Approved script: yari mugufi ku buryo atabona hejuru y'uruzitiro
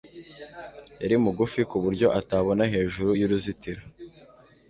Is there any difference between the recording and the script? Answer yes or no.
no